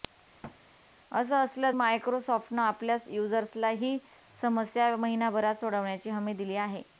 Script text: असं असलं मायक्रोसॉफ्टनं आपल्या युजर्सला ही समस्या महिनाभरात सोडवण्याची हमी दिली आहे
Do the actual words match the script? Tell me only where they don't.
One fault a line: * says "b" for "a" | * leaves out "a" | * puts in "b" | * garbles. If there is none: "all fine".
all fine